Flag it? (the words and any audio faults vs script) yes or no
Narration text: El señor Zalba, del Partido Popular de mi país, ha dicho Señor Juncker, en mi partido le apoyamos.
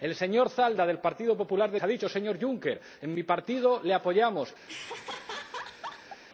yes